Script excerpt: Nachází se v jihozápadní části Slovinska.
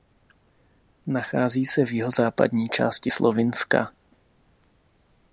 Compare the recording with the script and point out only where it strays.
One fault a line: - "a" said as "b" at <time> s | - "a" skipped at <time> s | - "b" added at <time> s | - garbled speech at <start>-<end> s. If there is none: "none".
none